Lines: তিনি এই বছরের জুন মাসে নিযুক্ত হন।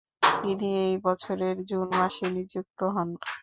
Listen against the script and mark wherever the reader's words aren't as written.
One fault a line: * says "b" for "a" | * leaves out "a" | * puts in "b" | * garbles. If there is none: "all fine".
all fine